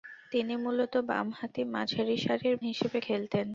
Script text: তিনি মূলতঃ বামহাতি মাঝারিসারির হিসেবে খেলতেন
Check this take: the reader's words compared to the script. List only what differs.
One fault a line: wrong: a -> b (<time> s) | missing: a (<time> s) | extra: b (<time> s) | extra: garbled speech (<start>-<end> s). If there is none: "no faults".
no faults